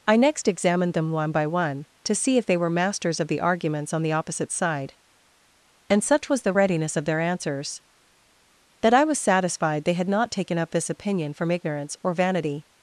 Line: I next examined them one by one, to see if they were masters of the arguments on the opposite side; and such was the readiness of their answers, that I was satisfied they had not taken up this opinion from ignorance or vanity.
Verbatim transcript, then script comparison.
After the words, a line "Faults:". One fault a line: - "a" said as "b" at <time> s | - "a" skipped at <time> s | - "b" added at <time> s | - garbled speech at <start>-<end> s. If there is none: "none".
I next examined them one by one, to see if they were masters of the arguments on the opposite side; and such was the readiness of their answers, that I was satisfied they had not taken up this opinion from ignorance or vanity.
Faults:
none